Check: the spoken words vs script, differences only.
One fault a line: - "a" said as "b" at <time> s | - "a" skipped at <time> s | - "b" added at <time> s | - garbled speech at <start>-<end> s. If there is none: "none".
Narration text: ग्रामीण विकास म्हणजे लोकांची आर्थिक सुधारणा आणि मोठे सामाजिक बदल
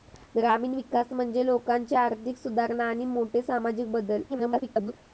- garbled speech at 4.3-4.9 s